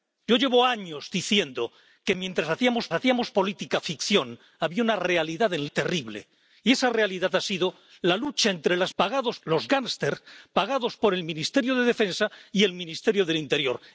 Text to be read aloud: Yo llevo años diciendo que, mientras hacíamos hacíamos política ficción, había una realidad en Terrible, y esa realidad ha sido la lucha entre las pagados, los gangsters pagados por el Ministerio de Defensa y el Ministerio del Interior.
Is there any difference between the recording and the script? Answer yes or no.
no